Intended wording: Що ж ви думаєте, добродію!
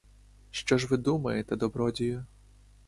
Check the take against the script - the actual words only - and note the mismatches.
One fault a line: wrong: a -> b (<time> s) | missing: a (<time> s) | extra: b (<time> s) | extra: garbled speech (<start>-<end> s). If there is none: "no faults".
no faults